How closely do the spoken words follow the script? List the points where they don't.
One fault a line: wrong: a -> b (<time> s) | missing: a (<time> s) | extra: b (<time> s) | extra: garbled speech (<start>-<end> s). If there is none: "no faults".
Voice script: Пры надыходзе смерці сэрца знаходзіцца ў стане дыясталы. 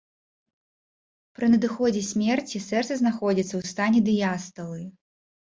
no faults